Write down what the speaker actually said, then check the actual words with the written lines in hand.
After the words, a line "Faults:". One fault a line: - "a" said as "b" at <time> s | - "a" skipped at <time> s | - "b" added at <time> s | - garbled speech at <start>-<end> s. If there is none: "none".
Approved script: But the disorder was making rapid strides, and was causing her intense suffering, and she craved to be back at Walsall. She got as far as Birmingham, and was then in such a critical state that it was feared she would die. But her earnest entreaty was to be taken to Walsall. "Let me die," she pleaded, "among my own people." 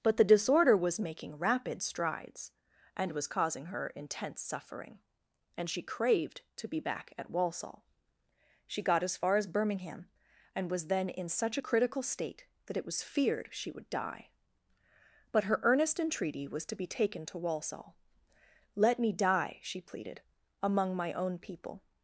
But the disorder was making rapid strides, and was causing her intense suffering, and she craved to be back at Walsall. She got as far as Birmingham, and was then in such a critical state that it was feared she would die. But her earnest entreaty was to be taken to Walsall. "Let me die," she pleaded, "among my own people."
Faults:
none